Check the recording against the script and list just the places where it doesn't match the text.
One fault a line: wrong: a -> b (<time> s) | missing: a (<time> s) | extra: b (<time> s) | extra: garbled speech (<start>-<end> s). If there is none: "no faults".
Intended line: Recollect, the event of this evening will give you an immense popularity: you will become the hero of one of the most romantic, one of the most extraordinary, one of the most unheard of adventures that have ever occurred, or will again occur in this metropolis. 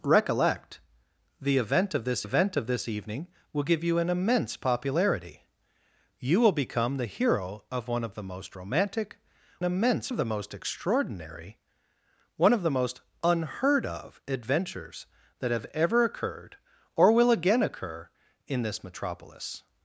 extra: event of this (2.2 s)
wrong: one -> immense (9.6 s)